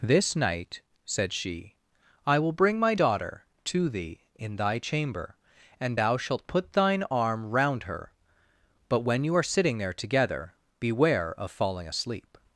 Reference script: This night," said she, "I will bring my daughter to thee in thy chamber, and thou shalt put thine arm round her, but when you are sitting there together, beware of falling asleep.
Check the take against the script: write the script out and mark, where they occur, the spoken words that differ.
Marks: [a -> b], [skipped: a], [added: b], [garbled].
This night," said she, "I will bring my daughter to thee in thy chamber, and thou shalt put thine arm round her, but when you are sitting there together, beware of falling asleep.